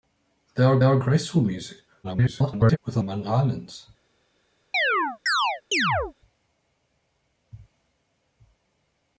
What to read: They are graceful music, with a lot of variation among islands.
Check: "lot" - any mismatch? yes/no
yes